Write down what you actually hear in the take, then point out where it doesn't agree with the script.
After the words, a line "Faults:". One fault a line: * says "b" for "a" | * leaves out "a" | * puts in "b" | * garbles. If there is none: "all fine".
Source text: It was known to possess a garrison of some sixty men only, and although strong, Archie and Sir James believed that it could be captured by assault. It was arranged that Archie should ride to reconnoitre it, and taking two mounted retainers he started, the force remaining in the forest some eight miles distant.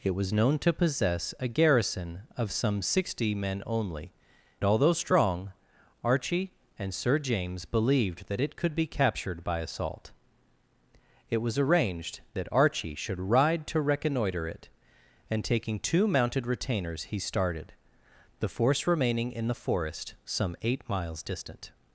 It was known to possess a garrison of some sixty men only, although strong, Archie and Sir James believed that it could be captured by assault. It was arranged that Archie should ride to reconnoitre it, and taking two mounted retainers he started, the force remaining in the forest some eight miles distant.
Faults:
* leaves out "and"